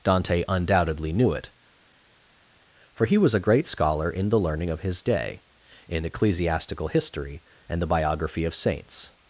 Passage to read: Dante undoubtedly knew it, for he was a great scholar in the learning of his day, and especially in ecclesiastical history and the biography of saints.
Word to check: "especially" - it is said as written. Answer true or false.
false